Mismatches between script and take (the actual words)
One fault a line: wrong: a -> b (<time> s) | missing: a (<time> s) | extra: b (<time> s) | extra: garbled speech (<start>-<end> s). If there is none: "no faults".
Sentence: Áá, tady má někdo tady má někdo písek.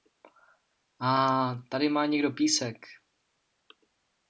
missing: tady má někdo (2.3 s)